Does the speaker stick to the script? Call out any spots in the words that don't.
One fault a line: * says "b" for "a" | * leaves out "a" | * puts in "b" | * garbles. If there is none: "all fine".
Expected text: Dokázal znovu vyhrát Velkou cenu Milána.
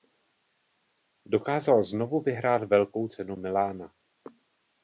all fine